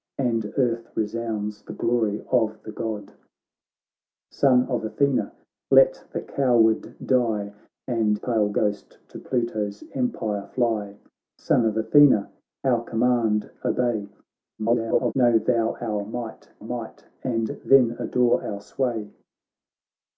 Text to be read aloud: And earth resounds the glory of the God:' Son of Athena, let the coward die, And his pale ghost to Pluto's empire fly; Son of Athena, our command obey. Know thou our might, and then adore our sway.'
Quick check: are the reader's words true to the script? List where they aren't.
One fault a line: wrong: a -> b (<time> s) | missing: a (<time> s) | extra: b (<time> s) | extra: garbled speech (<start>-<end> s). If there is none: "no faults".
missing: his (8.2 s)
extra: garbled speech (14.6-15.1 s)
extra: might (16.6 s)